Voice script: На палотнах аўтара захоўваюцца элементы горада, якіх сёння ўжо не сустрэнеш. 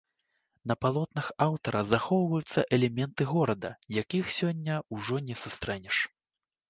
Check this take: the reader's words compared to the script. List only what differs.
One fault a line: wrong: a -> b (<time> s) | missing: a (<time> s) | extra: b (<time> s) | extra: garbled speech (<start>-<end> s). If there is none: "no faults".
no faults